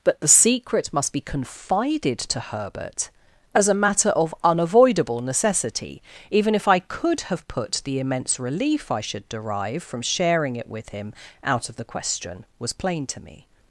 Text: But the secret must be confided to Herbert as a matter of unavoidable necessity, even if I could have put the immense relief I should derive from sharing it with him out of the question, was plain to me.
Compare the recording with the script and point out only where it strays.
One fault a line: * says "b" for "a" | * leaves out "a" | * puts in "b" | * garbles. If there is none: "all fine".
all fine